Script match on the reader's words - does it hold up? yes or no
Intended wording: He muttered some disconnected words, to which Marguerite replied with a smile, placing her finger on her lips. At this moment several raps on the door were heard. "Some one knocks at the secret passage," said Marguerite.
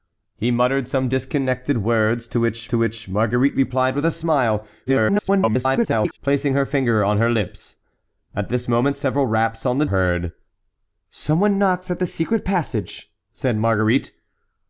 no